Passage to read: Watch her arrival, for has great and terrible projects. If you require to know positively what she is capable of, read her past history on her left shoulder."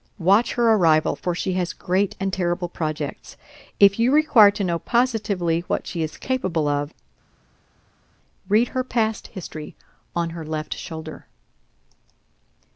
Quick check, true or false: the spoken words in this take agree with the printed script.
false